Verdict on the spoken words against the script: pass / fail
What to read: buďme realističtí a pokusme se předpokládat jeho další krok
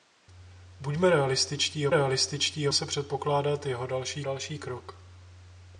fail